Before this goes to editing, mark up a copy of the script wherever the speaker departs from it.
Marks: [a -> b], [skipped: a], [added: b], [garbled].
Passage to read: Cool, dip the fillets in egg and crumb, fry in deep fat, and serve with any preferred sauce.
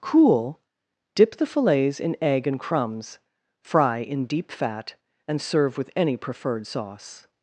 Cool, dip the fillets in egg and [crumb, -> crumbs] fry in deep fat, and serve with any preferred sauce.